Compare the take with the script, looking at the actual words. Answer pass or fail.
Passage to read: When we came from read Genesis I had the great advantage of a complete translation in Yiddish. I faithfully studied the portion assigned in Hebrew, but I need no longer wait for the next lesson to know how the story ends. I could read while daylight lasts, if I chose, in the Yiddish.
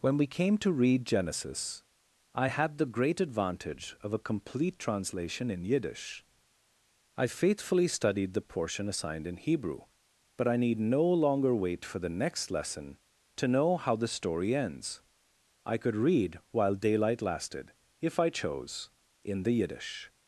fail